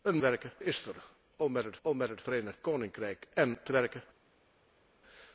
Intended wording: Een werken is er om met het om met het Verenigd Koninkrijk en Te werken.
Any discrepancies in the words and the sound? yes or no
no